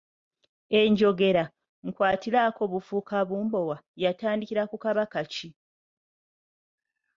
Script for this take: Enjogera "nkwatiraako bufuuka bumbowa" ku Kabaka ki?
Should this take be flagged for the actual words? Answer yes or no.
yes